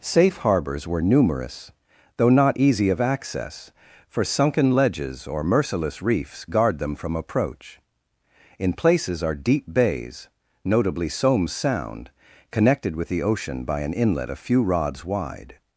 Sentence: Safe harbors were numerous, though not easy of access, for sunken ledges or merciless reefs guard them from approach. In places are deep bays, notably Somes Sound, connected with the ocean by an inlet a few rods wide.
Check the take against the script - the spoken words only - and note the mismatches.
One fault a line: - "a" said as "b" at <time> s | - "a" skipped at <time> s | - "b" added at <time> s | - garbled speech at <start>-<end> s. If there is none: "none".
none